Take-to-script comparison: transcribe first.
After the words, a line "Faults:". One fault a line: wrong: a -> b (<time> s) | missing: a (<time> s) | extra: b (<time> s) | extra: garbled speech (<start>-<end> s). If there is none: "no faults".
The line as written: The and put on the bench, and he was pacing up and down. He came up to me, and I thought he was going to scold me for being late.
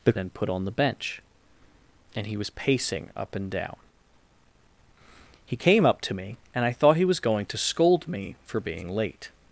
The and put on the bench, and he was pacing up and down. He came up to me, and I thought he was going to scold me for being late.
Faults:
no faults